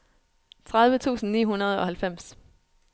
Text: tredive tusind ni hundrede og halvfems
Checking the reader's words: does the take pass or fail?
pass